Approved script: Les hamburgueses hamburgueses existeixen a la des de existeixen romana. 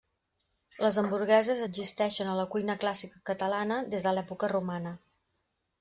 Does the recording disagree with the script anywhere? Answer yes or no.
yes